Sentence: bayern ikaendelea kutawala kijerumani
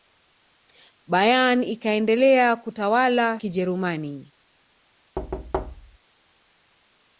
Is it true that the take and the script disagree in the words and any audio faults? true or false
true